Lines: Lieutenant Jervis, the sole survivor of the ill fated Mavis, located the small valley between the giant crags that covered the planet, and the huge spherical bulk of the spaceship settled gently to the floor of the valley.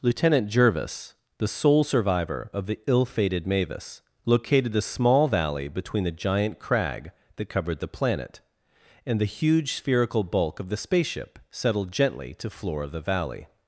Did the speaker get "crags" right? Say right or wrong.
wrong